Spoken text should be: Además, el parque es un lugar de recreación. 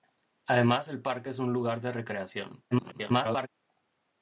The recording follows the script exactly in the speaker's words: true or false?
false